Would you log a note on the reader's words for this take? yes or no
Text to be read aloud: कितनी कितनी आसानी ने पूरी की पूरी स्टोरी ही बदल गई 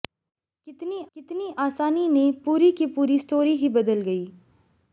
no